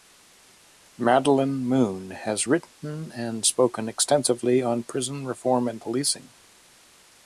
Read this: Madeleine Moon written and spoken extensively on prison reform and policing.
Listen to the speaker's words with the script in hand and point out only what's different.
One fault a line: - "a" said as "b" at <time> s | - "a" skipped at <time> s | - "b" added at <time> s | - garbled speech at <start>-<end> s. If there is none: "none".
- "has" added at 2.1 s